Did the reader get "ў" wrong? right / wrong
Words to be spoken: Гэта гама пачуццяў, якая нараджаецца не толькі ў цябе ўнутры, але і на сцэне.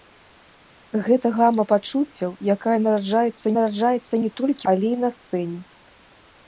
wrong